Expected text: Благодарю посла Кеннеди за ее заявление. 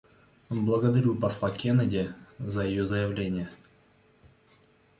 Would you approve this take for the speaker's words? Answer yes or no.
yes